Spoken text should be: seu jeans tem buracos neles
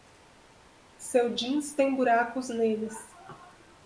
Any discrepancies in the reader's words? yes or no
no